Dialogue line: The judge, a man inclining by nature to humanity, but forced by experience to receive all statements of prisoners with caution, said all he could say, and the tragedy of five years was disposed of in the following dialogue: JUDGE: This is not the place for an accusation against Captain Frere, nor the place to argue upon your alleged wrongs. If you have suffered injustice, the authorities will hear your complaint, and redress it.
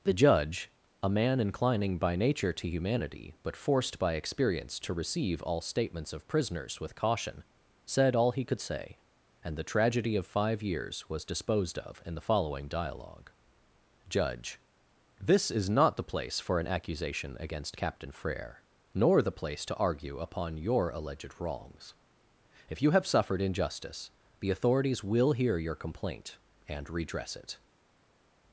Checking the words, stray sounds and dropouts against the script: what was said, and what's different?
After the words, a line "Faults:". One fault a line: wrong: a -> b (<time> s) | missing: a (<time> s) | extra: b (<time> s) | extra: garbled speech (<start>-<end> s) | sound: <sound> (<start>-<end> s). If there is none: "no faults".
The judge, a man inclining by nature to humanity, but forced by experience to receive all statements of prisoners with caution, said all he could say, and the tragedy of five years was disposed of in the following dialogue: JUDGE: This is not the place for an accusation against Captain Frere, nor the place to argue upon your alleged wrongs. If you have suffered injustice, the authorities will hear your complaint, and redress it.
Faults:
no faults